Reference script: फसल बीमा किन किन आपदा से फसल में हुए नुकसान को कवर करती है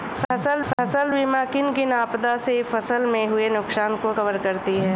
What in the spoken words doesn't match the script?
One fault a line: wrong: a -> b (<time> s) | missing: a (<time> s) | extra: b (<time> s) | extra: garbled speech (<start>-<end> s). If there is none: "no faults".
extra: फसल (0.7 s)